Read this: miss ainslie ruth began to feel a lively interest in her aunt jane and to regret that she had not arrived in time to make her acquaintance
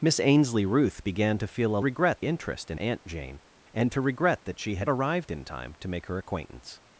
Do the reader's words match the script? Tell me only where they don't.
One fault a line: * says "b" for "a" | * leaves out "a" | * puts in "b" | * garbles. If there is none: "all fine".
* says "regret" for "lively"
* leaves out "her"
* leaves out "not"